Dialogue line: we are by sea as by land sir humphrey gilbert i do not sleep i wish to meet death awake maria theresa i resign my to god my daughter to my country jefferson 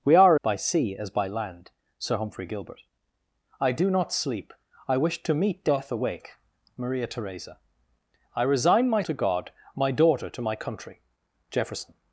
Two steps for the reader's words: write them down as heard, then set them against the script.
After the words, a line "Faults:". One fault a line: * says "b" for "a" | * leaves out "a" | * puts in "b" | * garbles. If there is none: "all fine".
we are by sea as by land sir humphrey gilbert i do not sleep i wish to meet death awake maria theresa i resign my to god my daughter to my country jefferson
Faults:
all fine